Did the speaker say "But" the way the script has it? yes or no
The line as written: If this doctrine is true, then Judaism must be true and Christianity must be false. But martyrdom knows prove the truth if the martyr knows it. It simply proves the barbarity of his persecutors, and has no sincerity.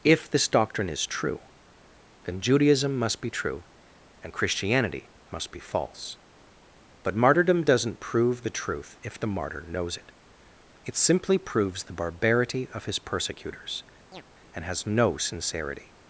yes